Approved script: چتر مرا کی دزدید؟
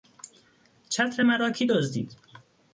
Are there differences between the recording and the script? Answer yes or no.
no